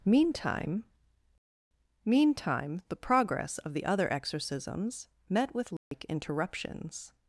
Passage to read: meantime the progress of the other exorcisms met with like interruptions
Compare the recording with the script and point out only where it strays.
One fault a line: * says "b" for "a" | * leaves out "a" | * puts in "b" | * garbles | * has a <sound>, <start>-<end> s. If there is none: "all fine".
* puts in "meantime"
* has a dropout, 5.8-5.9 s